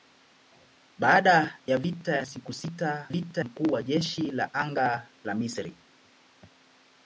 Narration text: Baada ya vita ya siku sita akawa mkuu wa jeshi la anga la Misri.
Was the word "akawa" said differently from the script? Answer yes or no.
yes